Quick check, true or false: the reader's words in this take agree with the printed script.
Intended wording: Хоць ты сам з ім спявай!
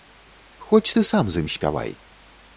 true